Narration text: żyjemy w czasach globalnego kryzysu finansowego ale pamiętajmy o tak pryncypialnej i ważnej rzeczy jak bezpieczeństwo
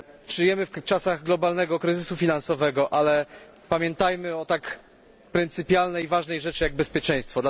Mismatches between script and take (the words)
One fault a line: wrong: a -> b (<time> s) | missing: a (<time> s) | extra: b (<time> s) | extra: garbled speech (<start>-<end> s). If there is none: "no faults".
no faults